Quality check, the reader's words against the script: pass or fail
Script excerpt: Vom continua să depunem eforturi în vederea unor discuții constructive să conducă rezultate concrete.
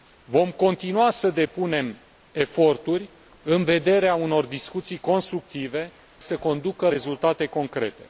pass